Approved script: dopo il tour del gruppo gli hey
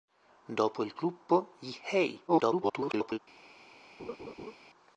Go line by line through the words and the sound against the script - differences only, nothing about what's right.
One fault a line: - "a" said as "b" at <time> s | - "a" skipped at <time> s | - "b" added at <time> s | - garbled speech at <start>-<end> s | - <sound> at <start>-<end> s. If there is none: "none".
- "tour del" skipped at 0.9 s
- garbled speech at 2.3-3.2 s
- laugh at 4.0-4.6 s